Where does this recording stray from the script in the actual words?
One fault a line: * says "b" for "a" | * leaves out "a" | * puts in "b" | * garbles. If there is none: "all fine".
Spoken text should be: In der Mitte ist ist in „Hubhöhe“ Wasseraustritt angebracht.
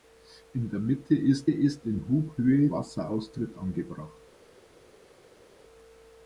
all fine